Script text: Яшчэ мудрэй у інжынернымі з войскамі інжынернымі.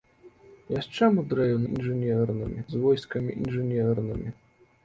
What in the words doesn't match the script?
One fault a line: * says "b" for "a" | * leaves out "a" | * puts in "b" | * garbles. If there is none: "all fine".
all fine